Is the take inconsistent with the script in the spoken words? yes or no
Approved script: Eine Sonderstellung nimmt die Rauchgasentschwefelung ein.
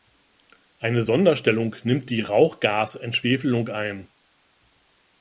no